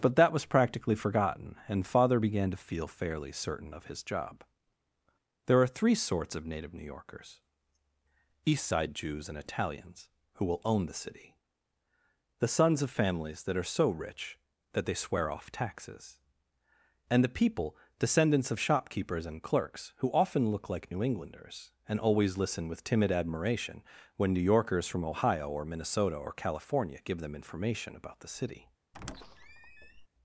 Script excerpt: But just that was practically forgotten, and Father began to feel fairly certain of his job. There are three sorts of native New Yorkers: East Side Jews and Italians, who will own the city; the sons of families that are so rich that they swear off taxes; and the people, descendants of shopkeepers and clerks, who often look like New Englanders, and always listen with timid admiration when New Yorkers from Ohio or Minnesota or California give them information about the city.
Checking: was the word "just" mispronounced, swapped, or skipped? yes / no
yes